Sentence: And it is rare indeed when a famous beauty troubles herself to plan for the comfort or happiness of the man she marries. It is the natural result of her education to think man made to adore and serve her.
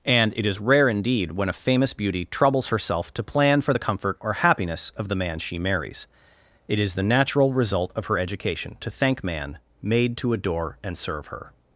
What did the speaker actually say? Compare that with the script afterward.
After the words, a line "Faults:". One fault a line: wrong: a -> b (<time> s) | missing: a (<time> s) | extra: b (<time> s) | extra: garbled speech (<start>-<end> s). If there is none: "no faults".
And it is rare indeed when a famous beauty troubles herself to plan for the comfort or happiness of the man she marries. It is the natural result of her education to thank man made to adore and serve her.
Faults:
wrong: think -> thank (8.9 s)